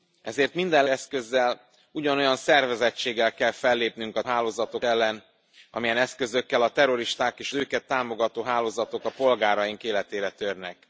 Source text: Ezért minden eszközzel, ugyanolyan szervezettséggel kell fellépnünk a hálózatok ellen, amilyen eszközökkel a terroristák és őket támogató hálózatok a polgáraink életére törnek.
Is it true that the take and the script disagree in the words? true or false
false